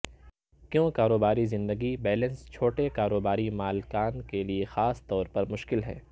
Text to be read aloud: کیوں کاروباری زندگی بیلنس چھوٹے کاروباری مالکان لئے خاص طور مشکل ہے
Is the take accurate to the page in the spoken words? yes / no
no